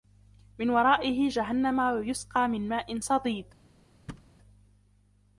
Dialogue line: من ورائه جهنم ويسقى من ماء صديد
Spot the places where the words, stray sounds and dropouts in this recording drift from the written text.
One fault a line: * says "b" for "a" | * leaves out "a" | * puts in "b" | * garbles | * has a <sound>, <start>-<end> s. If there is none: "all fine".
* has a thud, 4.1-4.3 s